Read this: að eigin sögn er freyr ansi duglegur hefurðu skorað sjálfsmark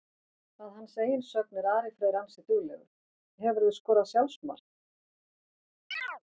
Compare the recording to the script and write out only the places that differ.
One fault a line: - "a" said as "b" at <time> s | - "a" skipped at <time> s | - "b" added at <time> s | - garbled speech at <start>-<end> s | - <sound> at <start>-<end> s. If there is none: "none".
- "hans" added at 0.8 s
- "ari" added at 1.7 s
- chirp at 5.9-6.2 s